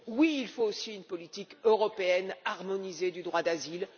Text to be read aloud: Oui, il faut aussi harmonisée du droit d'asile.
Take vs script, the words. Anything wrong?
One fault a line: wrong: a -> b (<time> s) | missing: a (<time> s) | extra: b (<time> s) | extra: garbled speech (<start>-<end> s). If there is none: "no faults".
extra: une politique européenne (0.9 s)